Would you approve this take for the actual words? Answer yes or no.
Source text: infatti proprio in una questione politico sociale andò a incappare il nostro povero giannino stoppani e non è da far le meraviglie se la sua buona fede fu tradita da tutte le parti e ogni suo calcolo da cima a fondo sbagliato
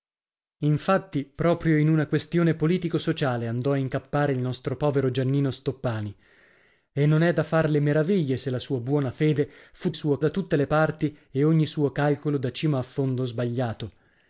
no